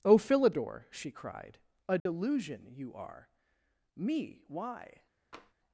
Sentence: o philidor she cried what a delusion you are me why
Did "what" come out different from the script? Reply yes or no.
yes